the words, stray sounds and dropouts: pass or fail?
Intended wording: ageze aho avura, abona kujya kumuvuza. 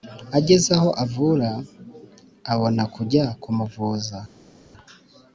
pass